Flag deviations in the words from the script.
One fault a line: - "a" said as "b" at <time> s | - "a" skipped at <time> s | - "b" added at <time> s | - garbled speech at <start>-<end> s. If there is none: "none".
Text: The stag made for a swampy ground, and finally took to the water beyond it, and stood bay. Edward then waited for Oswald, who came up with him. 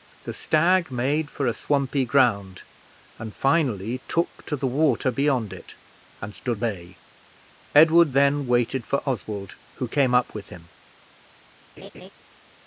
none